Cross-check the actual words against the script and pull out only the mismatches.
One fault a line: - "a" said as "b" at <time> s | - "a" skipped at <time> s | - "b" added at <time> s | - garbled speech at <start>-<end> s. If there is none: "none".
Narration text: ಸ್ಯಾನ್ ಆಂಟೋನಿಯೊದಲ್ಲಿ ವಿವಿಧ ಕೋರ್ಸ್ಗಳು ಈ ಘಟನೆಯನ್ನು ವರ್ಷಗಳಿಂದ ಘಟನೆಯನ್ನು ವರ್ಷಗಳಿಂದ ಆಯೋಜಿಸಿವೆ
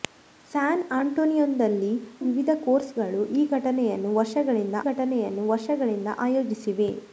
none